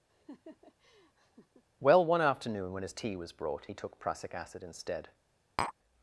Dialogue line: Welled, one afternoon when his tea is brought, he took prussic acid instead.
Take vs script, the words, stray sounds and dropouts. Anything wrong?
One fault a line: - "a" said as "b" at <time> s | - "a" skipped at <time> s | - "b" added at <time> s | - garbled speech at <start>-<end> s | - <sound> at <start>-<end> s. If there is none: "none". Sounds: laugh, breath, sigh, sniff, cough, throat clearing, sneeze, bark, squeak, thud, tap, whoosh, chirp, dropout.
- laugh at 0.1-1.6 s
- "Welled" said as "Well" at 1.8 s
- "is" said as "was" at 3.2 s
- tap at 5.6-5.7 s